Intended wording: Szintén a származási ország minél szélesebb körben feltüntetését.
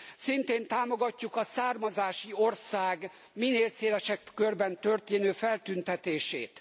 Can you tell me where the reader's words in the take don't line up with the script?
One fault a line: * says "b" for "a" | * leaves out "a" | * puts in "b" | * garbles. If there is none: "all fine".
* puts in "támogatjuk"
* puts in "történő"